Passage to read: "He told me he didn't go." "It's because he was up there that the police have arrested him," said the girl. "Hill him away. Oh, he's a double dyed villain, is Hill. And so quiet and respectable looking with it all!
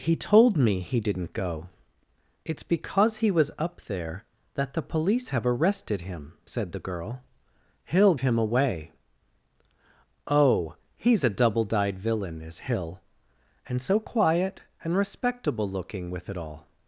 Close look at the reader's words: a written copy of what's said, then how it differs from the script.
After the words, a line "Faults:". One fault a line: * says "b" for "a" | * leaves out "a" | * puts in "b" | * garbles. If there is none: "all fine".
"He told me he didn't go." "It's because he was up there that the police have arrested him," said the girl. "Hill him away. Oh, he's a double dyed villain, is Hill. And so quiet and respectable looking with it all!
Faults:
all fine